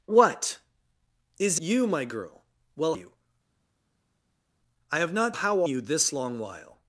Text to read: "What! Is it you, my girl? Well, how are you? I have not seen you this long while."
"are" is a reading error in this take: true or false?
true